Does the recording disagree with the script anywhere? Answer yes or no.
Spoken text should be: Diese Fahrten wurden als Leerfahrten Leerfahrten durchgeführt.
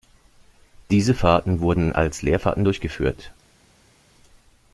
yes